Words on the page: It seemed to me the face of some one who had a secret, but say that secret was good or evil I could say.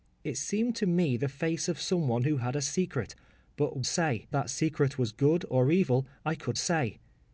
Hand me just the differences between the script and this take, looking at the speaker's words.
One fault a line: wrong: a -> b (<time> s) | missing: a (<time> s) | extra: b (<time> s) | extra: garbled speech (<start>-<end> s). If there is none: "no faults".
no faults